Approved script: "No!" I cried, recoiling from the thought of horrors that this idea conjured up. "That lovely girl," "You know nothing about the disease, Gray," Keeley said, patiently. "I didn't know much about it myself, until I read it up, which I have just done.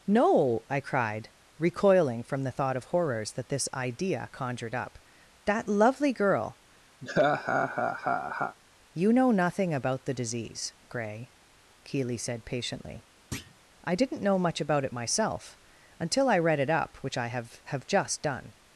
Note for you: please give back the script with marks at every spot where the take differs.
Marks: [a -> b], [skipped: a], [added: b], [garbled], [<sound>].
"No!" I cried, recoiling from the thought of horrors that this idea conjured up. "That lovely girl," [laugh] "You know nothing about the disease, Gray," Keeley said, patiently. [thud] "I didn't know much about it myself, until I read it up, which I have [added: have] just done.